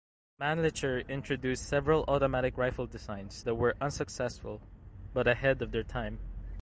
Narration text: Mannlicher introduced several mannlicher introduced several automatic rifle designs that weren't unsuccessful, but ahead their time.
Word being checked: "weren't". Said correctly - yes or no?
no